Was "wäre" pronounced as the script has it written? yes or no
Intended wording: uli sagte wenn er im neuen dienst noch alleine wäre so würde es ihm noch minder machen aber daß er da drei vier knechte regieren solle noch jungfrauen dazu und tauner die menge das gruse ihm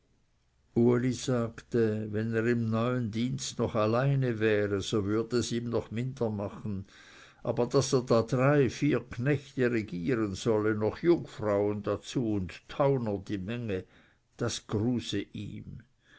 yes